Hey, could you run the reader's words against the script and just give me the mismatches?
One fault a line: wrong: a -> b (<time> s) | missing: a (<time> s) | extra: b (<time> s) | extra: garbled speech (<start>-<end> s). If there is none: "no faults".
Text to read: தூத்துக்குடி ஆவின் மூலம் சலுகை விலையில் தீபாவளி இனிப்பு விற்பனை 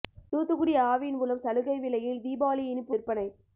no faults